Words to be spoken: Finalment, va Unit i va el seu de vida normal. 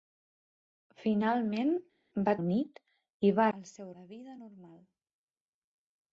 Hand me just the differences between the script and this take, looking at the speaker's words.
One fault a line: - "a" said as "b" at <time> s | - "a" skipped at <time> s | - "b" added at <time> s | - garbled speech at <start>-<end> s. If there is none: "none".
none